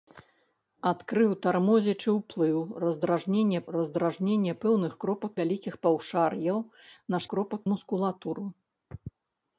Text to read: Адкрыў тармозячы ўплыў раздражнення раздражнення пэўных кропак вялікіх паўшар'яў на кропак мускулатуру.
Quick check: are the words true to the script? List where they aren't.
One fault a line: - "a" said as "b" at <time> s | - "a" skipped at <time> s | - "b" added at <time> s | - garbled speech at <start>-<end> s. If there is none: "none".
none